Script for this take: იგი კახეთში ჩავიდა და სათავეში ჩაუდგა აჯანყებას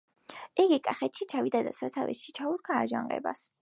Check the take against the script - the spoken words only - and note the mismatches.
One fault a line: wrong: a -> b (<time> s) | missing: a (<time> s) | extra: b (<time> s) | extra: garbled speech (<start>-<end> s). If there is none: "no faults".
no faults